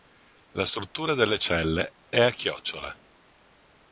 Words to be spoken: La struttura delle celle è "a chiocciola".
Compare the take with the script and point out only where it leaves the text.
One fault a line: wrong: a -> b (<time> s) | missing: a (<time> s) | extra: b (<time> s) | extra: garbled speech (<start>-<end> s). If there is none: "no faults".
no faults